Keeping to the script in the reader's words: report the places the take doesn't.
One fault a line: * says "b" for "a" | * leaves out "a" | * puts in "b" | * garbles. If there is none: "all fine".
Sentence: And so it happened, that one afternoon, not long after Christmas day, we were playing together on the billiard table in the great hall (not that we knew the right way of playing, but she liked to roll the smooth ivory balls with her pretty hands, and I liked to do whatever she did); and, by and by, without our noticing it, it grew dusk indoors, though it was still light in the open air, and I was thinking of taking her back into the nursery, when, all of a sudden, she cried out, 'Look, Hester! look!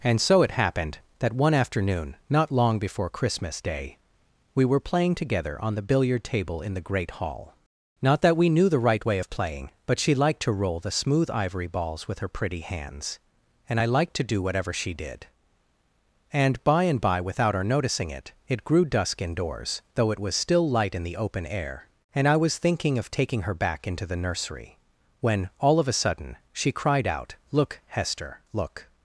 * says "before" for "after"